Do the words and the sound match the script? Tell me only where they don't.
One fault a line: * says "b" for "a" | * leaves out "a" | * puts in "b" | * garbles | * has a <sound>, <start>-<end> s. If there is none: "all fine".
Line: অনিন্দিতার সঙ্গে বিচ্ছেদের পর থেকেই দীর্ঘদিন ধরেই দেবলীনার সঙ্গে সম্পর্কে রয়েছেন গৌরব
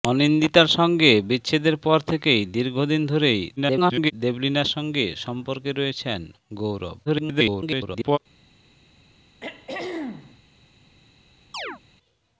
* garbles
* garbles
* has a throat clearing, 9.4-10.4 s
* has a chirp, 11.5-11.8 s